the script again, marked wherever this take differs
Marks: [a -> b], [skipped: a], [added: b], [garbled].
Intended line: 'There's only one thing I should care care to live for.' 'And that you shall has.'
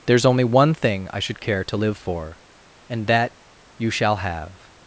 'There's only one thing I should care [skipped: care] to live for.' 'And that you shall [has.' -> have]